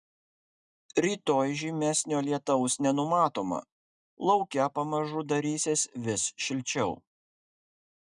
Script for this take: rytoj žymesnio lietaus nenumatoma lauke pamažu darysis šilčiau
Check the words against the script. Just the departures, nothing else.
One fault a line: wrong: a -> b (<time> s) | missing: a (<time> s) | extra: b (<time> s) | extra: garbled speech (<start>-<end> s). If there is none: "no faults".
extra: vis (6.1 s)